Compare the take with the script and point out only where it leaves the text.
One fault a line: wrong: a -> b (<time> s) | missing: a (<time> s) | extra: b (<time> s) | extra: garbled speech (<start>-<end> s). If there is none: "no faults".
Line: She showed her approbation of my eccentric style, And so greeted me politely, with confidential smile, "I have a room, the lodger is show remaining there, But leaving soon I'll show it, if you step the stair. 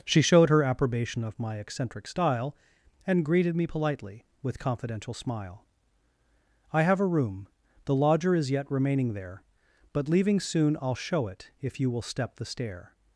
missing: so (3.3 s)
wrong: show -> yet (8.5 s)
extra: will (11.9 s)